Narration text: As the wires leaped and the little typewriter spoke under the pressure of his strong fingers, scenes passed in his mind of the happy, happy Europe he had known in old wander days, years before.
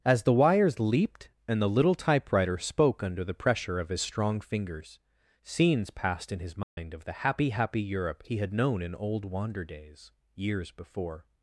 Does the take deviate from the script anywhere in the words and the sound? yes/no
yes